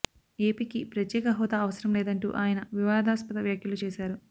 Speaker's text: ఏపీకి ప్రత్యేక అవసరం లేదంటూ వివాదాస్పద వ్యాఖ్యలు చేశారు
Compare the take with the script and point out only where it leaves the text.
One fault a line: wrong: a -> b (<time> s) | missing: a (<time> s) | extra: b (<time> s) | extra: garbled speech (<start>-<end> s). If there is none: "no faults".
extra: హోదా (1.4 s)
extra: ఆయన (2.4 s)